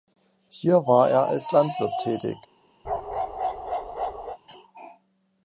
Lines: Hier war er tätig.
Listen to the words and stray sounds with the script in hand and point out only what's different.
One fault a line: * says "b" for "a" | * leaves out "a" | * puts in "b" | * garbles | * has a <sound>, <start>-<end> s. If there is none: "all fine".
* puts in "als Landwirt"
* has a bark, 2.8-4.4 s